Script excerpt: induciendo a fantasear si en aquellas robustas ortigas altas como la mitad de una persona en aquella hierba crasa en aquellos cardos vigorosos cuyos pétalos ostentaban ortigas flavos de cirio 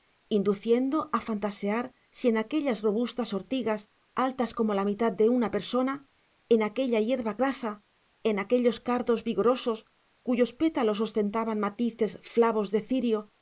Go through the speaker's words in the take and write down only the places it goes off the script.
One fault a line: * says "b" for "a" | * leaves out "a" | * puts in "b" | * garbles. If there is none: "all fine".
* says "matices" for "ortigas"